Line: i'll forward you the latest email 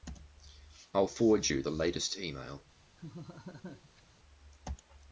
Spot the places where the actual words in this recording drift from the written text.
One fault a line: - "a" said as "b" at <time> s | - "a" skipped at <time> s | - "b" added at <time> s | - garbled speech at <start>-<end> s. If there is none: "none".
none